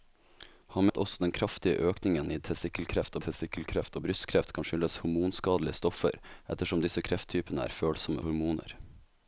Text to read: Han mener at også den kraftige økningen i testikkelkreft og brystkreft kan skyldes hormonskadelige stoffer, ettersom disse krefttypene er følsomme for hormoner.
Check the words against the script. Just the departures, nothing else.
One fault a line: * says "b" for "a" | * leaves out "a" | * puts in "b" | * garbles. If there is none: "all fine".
* leaves out "mener"
* puts in "testikkelkreft"
* leaves out "for"